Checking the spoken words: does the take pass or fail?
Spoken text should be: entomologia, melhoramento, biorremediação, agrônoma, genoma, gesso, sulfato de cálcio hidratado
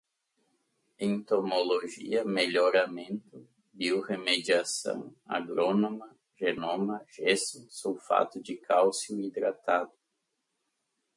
pass